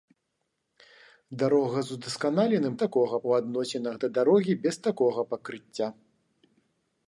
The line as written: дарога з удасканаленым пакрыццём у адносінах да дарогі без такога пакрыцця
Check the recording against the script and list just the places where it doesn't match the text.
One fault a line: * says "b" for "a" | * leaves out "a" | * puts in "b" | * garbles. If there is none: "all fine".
* says "такога" for "пакрыццём"